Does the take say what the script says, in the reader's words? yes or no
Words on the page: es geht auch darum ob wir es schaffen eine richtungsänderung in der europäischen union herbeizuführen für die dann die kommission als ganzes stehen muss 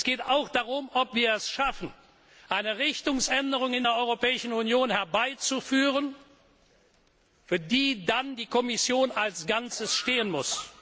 yes